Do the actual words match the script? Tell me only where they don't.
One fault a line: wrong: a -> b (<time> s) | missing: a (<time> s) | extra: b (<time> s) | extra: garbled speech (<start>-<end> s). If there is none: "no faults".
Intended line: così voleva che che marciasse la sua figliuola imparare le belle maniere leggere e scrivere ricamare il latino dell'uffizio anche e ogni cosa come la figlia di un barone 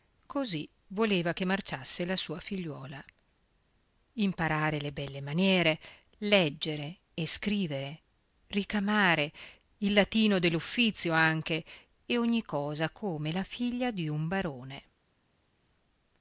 missing: che (1.4 s)